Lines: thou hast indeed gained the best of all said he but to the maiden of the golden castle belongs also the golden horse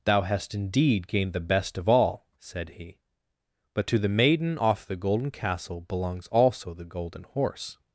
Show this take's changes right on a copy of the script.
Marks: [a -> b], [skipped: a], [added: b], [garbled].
thou hast indeed gained the best of all said he but to the maiden [of -> off] the golden castle belongs also the golden horse